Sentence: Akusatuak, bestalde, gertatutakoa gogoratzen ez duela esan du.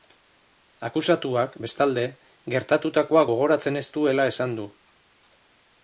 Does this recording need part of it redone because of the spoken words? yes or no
no